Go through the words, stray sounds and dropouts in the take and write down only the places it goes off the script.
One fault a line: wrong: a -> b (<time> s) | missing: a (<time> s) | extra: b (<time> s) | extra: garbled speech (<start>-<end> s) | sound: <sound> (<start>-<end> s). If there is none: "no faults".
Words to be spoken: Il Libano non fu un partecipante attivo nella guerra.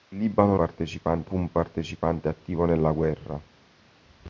wrong: non -> partecipante (0.5 s)